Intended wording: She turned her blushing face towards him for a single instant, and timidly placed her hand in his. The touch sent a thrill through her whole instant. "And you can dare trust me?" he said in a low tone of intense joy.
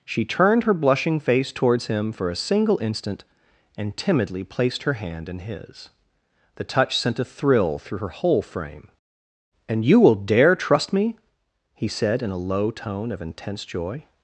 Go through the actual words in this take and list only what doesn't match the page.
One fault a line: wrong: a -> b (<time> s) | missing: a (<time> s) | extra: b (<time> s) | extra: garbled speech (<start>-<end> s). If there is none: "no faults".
wrong: instant -> frame (8.4 s)
wrong: can -> will (10.0 s)